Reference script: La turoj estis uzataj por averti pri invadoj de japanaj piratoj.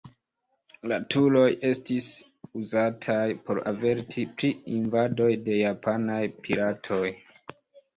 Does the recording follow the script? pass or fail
pass